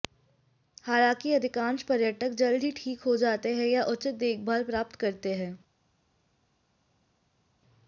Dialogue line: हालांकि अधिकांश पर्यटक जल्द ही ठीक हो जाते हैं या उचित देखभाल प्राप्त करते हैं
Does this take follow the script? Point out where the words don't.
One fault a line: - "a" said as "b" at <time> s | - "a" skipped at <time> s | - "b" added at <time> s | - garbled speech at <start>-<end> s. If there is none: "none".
none